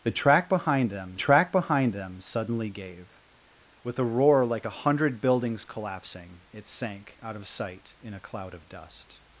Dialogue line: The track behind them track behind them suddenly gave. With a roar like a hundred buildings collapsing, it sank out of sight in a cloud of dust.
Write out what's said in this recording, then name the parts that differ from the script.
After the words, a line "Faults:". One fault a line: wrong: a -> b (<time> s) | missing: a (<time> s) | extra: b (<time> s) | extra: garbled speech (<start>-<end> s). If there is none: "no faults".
The track behind them track behind them suddenly gave. With a roar like a hundred buildings collapsing, it sank out of sight in a cloud of dust.
Faults:
no faults